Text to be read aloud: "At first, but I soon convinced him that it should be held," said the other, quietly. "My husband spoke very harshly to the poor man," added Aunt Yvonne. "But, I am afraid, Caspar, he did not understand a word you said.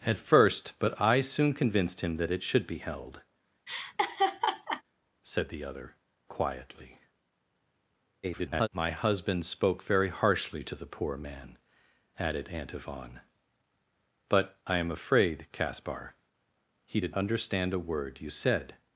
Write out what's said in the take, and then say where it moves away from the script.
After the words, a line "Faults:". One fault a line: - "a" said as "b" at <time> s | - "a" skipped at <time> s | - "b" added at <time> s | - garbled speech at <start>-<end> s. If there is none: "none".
"At first, but I soon convinced him that it should be held," said the other, quietly. [garbled] "My husband spoke very harshly to the poor man," added Aunt Yvonne. "But, I am afraid, Caspar, he did understand a word you said.
Faults:
- garbled speech at 8.2-8.7 s
- "not" skipped at 17.2 s